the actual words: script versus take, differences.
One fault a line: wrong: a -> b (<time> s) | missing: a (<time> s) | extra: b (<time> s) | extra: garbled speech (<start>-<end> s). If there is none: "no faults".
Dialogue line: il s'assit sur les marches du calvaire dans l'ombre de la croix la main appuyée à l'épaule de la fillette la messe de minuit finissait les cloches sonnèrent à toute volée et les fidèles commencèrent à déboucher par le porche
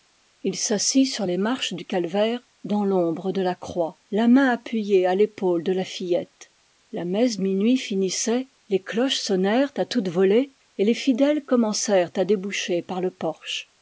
missing: de (7.4 s)